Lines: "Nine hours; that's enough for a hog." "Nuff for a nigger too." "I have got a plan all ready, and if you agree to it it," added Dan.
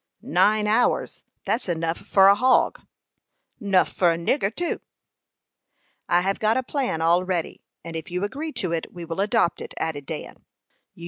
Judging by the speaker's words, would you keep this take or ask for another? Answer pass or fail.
fail